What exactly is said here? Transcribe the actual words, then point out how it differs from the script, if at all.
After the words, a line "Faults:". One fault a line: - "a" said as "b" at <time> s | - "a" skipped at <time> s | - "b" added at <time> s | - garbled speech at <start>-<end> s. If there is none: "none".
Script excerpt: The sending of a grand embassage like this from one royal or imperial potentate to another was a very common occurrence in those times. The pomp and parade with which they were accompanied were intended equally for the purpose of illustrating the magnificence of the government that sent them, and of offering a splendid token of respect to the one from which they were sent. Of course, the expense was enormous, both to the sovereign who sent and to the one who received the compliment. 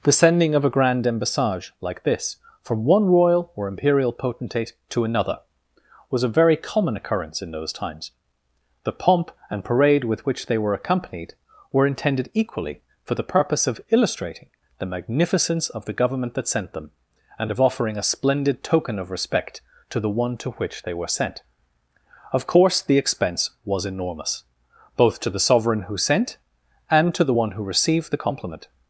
The sending of a grand embassage like this from one royal or imperial potentate to another was a very common occurrence in those times. The pomp and parade with which they were accompanied were intended equally for the purpose of illustrating the magnificence of the government that sent them, and of offering a splendid token of respect to the one to which they were sent. Of course, the expense was enormous, both to the sovereign who sent and to the one who received the compliment.
Faults:
- "from" said as "to" at 20.4 s